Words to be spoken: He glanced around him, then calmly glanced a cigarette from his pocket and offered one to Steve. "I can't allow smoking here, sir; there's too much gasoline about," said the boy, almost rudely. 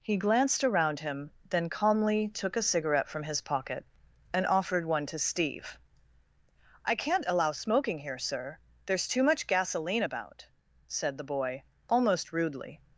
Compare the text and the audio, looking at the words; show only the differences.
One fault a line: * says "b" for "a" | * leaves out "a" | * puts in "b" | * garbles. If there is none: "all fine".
* says "took" for "glanced"